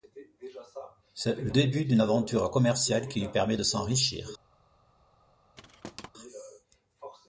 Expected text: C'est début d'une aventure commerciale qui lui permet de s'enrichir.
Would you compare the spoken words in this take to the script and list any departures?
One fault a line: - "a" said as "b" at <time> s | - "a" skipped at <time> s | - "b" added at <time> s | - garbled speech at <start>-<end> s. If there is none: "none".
- "le" added at 1.4 s